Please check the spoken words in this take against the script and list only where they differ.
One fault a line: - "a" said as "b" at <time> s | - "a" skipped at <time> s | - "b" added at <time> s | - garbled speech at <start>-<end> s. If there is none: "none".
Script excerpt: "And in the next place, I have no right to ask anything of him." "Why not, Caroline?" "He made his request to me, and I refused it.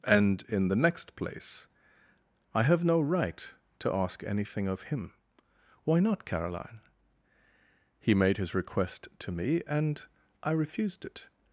none